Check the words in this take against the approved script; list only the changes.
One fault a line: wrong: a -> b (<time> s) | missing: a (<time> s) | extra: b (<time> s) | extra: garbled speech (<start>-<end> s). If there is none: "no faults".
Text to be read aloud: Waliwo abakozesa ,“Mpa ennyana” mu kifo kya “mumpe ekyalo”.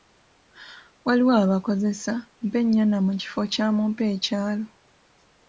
no faults